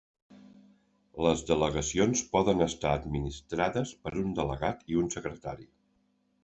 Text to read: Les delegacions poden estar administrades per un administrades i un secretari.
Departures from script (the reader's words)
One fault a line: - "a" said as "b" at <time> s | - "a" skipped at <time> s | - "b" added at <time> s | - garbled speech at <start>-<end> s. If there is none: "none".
- "administrades" said as "delegat" at 4.4 s